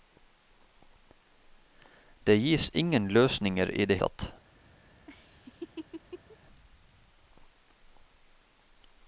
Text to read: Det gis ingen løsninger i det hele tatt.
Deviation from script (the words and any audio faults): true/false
true